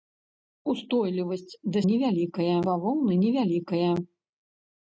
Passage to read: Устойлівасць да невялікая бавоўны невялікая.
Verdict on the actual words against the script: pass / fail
pass